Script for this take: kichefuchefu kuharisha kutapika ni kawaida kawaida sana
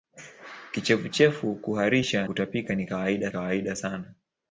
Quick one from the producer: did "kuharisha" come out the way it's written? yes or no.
yes